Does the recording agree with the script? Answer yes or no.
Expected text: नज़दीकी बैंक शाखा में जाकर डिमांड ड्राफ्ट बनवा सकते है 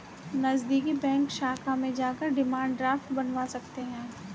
yes